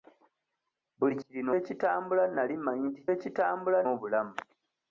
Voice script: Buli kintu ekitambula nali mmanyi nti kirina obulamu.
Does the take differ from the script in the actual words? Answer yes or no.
yes